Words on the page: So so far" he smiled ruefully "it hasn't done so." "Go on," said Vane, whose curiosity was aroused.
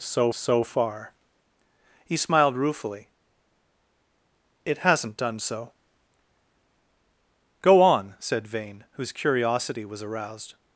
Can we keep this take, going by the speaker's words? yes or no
yes